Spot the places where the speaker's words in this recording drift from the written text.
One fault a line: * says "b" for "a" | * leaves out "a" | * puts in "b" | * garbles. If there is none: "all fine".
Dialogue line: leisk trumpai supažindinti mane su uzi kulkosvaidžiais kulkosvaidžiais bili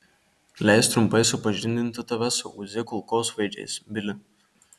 * says "tave" for "mane"
* leaves out "kulkosvaidžiais"